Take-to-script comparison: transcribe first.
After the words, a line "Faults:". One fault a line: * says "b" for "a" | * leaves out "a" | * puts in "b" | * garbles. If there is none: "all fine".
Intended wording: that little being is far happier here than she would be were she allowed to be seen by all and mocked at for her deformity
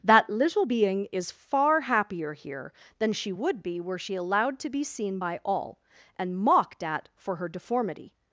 that little being is far happier here than she would be were she allowed to be seen by all and mocked at for her deformity
Faults:
all fine